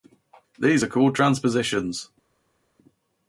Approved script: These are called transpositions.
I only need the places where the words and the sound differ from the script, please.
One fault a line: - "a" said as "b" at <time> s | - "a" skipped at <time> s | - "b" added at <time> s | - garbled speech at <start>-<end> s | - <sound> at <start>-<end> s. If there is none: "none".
none